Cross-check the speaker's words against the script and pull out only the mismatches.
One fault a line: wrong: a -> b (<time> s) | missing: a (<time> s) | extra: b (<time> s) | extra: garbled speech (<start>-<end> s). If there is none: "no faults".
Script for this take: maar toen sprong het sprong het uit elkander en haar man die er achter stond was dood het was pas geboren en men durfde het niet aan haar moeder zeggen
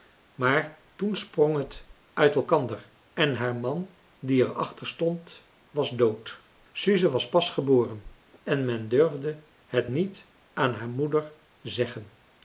missing: sprong het (1.9 s)
wrong: het -> suze (6.7 s)